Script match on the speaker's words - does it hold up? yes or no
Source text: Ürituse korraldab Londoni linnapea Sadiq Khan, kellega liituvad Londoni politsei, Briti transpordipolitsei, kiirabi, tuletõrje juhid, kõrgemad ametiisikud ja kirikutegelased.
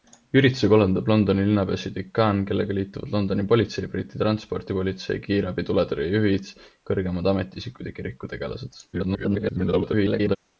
no